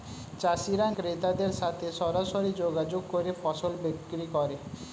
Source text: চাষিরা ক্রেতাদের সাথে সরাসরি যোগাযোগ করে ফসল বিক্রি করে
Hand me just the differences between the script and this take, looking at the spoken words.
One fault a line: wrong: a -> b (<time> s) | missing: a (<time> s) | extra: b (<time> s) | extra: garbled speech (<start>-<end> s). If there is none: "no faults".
no faults